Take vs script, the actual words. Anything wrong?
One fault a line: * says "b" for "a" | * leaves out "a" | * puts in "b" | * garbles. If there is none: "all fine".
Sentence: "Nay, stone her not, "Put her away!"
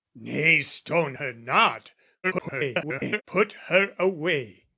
* garbles